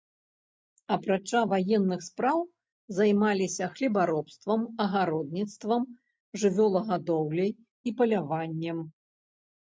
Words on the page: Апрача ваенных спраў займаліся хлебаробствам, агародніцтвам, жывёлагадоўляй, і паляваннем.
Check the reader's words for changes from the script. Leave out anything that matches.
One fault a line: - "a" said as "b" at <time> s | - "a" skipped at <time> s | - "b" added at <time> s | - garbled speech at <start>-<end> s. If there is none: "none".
none